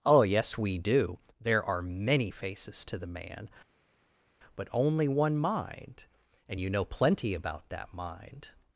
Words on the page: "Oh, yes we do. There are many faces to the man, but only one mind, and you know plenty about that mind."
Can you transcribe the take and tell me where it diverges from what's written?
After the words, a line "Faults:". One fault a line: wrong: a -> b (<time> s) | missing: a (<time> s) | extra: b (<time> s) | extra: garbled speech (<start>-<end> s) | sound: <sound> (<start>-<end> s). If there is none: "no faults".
"Oh, yes we do. There are many faces to the man, but only one mind, and you know plenty about that mind."
Faults:
no faults